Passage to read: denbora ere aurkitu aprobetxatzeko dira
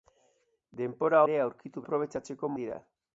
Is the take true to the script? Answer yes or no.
yes